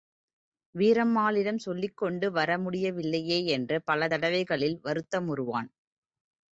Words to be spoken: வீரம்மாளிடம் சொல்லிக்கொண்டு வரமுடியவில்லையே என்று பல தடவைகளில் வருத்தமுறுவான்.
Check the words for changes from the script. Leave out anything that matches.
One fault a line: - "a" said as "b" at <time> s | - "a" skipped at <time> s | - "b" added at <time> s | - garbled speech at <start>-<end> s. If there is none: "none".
none